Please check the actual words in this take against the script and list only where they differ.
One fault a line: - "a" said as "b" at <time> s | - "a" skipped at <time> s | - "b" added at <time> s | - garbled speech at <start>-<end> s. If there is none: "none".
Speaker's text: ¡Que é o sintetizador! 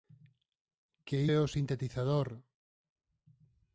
none